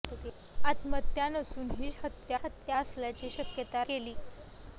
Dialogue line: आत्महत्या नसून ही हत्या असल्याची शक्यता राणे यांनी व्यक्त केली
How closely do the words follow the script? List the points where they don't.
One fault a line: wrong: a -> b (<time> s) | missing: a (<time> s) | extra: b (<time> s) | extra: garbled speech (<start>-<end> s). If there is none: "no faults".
extra: हत्या (2.4 s)
missing: राणे यांनी व्यक्त (3.8 s)